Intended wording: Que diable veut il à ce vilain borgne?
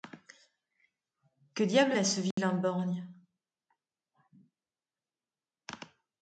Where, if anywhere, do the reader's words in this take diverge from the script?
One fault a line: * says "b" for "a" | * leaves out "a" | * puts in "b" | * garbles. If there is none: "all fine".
* leaves out "veut il"